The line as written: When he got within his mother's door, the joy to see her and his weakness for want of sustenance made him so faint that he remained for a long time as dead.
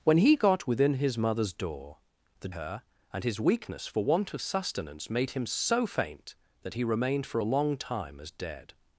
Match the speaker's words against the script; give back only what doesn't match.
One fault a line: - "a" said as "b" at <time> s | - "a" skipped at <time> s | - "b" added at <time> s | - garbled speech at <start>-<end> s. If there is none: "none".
- "joy to see" skipped at 2.5 s